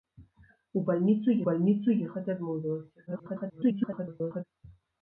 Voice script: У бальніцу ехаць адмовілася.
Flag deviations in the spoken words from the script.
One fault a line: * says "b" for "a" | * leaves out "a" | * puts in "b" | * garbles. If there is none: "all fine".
* puts in "бальніцу"
* garbles